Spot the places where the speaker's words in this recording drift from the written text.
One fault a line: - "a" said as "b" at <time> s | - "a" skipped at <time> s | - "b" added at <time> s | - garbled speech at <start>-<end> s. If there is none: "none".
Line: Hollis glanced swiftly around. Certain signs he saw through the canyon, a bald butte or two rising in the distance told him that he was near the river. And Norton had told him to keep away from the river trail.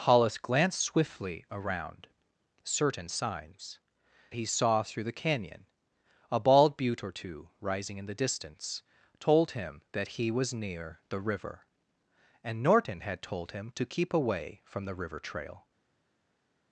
none